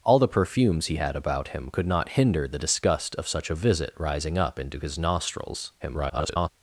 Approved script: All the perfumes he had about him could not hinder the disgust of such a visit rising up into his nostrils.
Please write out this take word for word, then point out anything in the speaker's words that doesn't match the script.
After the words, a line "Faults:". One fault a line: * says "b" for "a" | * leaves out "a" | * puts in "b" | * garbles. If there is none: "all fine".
All the perfumes he had about him could not hinder the disgust of such a visit rising up into his nostrils. [garbled]
Faults:
* garbles